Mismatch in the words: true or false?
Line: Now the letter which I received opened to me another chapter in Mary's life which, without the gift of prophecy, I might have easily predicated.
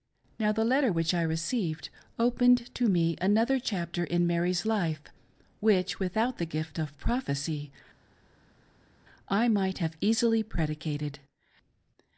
false